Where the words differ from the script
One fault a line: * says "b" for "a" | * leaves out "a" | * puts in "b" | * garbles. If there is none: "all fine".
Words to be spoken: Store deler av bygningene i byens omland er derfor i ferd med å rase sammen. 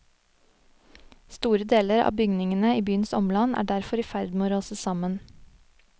all fine